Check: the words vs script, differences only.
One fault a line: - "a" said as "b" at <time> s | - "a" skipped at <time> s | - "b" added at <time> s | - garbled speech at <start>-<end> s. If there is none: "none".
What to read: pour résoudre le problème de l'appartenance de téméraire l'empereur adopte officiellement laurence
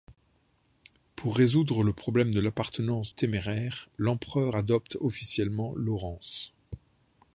- "de" skipped at 3.1 s